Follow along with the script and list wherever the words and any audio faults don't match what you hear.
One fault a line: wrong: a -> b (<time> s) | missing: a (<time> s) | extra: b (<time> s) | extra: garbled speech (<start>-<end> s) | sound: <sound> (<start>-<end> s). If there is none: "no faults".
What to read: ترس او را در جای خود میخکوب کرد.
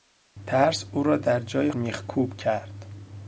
missing: خود (1.7 s)